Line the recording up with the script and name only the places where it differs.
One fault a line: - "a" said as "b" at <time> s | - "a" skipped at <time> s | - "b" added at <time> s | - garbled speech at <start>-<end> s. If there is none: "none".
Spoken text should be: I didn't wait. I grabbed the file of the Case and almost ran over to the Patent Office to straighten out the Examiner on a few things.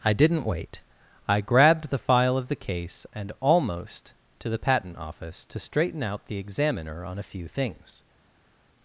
- "ran over" skipped at 4.1 s